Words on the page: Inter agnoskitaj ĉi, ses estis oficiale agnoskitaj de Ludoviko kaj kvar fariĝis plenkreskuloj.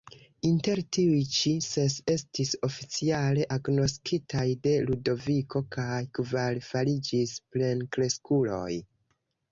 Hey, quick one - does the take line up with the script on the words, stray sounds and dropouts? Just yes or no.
no